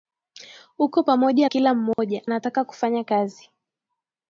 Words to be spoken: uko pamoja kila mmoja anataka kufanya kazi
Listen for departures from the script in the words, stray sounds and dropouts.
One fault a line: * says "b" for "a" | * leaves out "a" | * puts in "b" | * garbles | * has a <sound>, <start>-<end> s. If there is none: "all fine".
* has a dropout, 1.9-2.0 s